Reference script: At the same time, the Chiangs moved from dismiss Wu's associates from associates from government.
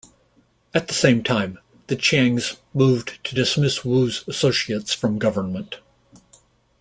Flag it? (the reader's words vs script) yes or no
yes